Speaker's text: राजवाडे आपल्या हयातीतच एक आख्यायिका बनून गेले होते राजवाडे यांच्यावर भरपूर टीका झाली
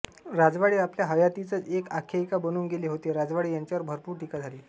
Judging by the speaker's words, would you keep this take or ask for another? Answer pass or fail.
pass